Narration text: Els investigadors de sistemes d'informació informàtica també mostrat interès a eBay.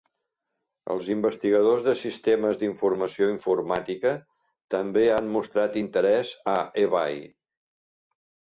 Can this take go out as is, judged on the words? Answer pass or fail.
fail